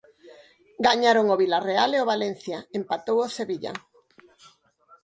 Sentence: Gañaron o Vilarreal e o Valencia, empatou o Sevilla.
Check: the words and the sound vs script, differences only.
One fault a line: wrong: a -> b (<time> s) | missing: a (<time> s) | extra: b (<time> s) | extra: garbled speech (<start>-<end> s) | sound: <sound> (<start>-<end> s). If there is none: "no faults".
no faults